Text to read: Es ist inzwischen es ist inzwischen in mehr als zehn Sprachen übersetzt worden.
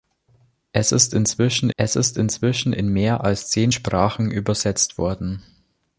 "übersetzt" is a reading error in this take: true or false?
false